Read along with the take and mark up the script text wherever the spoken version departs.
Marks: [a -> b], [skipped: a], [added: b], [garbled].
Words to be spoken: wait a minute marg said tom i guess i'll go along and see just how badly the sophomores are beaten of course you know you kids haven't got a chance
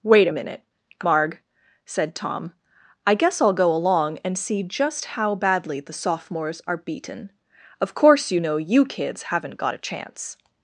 wait a minute marg said tom i guess i'll go along and see just how badly the sophomores are beaten of course you know you kids haven't got a chance